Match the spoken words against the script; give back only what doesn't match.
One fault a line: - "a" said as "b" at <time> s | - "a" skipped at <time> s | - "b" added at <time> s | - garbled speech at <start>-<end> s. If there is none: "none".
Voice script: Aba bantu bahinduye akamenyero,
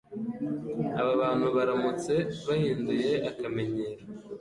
- "baramutse" added at 1.6 s